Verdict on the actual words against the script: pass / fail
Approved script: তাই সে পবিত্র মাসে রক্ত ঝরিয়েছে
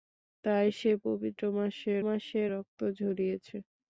fail